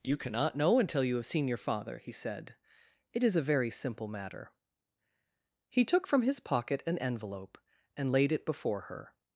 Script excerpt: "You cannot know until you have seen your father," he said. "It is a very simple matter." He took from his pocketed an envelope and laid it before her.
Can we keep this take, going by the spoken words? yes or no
no